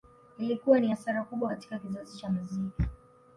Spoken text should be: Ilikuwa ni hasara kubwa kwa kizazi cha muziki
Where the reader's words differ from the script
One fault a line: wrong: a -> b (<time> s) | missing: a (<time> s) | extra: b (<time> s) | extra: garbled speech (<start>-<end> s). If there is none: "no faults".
wrong: kwa -> katika (1.5 s)